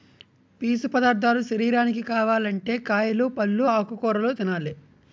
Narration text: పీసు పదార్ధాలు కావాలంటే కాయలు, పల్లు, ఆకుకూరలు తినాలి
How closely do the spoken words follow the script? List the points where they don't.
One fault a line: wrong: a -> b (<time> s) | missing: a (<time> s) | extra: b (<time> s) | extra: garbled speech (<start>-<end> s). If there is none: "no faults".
extra: శరీరానికి (1.4 s)